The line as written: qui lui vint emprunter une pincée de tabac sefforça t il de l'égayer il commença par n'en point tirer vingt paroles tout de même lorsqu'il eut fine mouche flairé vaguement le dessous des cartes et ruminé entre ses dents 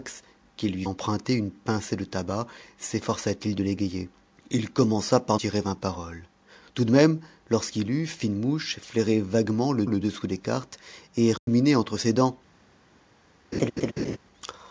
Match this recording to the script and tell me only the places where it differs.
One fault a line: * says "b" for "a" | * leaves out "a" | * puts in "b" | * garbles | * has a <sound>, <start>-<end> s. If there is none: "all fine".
* leaves out "vint"
* leaves out "n'en point"
* puts in "le"
* has a dropout, 11.4-11.5 s
* has a laugh, 13.5-14.2 s